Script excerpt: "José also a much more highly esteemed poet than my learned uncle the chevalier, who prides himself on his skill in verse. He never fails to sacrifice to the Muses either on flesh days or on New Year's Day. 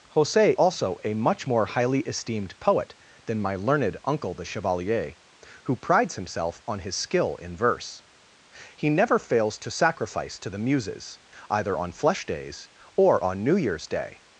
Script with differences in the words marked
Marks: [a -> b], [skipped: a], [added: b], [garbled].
"José also a much more highly esteemed poet than my learned uncle the chevalier, who prides himself on his skill in verse. He never fails to sacrifice to the Muses either on flesh days or on New Year's Day.